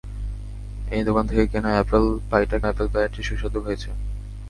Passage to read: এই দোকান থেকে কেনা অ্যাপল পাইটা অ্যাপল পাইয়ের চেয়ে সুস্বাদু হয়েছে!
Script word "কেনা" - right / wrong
right